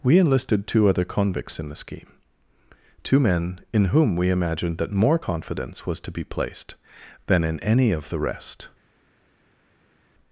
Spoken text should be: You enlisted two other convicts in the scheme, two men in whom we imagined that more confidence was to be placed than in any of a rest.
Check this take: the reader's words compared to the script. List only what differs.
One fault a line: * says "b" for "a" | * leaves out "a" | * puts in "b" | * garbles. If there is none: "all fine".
* says "We" for "You"
* says "the" for "a"